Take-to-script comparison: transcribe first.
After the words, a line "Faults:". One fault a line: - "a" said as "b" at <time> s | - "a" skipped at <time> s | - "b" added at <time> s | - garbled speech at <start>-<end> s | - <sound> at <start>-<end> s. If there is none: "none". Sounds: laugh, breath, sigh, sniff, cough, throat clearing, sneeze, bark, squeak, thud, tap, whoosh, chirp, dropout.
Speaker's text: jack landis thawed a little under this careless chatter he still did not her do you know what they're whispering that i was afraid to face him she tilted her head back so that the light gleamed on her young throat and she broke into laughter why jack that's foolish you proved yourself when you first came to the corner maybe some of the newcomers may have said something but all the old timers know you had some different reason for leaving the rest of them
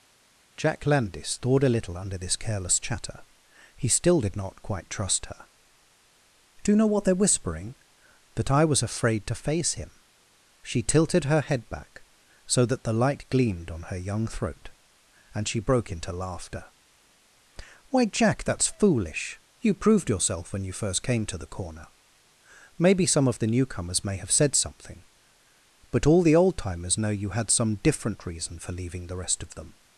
jack landis thawed a little under this careless chatter he still did not quite trust her do you know what they're whispering that i was afraid to face him she tilted her head back so that the light gleamed on her young throat and she broke into laughter why jack that's foolish you proved yourself when you first came to the corner maybe some of the newcomers may have said something but all the old timers know you had some different reason for leaving the rest of them
Faults:
- "quite trust" added at 4.6 s